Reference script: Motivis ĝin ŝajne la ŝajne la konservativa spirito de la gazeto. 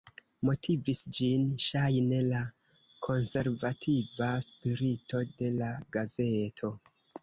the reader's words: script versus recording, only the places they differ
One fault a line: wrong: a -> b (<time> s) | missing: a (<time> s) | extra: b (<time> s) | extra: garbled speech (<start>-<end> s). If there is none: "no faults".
missing: ŝajne la (2.4 s)